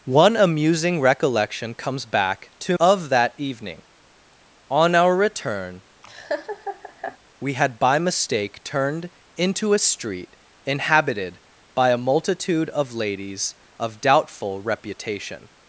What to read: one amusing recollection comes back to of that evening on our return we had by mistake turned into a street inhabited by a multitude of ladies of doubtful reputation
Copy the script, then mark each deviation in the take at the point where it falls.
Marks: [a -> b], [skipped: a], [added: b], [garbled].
one amusing recollection comes back to of that evening on our return we had by mistake turned into a street inhabited by a multitude of ladies of doubtful reputation